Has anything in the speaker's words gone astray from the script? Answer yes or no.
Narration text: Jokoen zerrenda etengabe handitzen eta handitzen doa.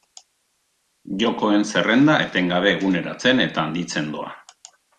yes